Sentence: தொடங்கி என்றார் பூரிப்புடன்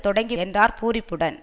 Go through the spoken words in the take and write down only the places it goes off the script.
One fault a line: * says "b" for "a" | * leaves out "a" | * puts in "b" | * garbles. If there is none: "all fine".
all fine